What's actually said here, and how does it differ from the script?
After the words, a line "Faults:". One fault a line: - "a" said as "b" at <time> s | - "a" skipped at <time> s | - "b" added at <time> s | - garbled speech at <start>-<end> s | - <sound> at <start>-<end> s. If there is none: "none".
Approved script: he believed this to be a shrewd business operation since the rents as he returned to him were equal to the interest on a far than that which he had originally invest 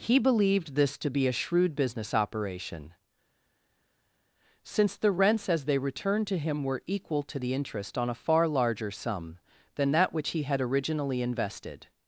he believed this to be a shrewd business operation since the rents as they returned to him were equal to the interest on a far larger sum than that which he had originally invested
Faults:
- "he" said as "they" at 5.7 s
- "larger sum" added at 8.5 s
- "invest" said as "invested" at 11.2 s